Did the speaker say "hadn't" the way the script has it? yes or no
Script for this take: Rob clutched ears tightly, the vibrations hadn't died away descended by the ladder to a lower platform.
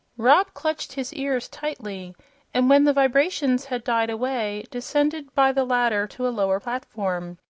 no